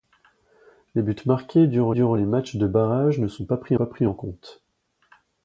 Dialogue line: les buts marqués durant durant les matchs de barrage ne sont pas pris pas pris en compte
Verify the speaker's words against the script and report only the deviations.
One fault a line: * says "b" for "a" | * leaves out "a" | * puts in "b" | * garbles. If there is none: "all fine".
all fine